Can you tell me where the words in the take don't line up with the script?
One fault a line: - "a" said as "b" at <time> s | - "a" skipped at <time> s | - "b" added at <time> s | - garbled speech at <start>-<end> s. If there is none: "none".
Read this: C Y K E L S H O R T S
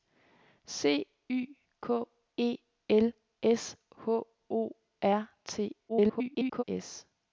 - garbled speech at 5.9-6.6 s